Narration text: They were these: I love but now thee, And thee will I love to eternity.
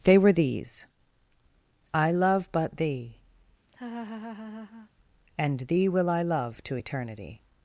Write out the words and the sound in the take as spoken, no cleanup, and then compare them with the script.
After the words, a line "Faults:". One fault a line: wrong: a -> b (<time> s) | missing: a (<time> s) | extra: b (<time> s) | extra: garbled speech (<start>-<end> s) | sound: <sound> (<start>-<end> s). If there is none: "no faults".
They were these: I love but thee, And thee will I love to eternity.
Faults:
missing: now (2.8 s)
sound: laugh (3.7-4.9 s)